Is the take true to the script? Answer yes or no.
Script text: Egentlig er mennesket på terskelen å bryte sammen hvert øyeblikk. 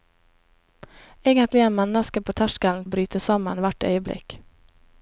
yes